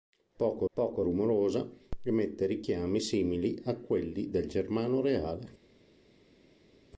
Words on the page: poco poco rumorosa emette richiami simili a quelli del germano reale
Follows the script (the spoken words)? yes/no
yes